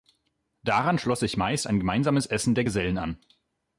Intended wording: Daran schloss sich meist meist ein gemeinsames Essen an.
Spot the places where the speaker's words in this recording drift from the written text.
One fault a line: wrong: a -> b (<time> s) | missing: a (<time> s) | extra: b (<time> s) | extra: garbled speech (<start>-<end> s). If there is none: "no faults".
missing: meist (1.7 s)
extra: der Gesellen (2.5 s)